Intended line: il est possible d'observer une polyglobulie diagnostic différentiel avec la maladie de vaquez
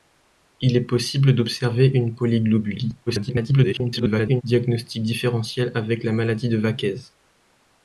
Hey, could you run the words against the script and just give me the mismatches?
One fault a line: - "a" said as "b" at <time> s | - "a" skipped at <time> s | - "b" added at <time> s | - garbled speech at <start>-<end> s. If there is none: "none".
- garbled speech at 3.1-4.4 s